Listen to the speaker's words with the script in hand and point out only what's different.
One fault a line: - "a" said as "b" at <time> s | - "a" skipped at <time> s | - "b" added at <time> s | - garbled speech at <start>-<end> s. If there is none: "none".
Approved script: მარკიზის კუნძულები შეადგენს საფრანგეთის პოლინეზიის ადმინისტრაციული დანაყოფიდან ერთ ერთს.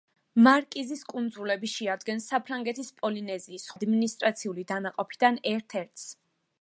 none